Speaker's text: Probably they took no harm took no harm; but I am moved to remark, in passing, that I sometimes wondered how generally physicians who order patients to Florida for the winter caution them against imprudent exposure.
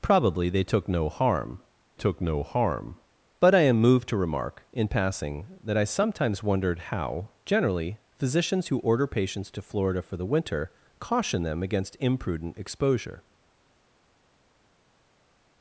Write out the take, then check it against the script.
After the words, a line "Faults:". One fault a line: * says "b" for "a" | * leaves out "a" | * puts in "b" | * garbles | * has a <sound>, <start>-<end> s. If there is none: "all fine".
Probably they took no harm took no harm; but I am moved to remark, in passing, that I sometimes wondered how generally physicians who order patients to Florida for the winter caution them against imprudent exposure.
Faults:
all fine